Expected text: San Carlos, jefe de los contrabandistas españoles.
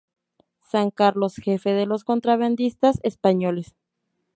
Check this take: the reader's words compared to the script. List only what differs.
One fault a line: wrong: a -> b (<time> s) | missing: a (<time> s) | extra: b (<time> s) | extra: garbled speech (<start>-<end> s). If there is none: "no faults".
no faults